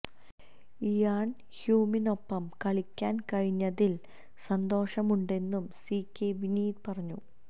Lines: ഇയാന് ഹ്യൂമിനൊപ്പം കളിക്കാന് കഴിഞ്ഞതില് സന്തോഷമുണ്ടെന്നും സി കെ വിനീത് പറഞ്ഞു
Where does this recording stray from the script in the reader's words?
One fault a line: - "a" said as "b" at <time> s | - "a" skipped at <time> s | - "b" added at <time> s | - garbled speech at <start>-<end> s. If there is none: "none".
none